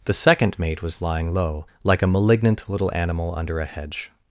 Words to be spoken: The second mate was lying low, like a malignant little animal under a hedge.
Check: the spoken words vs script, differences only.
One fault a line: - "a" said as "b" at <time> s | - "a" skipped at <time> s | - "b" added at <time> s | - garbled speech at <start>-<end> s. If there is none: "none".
none